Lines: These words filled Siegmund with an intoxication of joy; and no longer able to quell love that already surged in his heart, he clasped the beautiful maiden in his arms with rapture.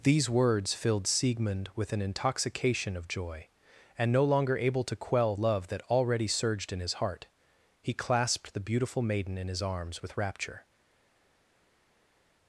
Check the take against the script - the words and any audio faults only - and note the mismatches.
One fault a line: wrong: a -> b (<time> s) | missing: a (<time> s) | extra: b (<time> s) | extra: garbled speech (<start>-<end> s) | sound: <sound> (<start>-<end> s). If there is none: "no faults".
no faults